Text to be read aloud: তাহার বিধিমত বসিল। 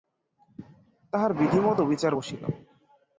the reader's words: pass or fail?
fail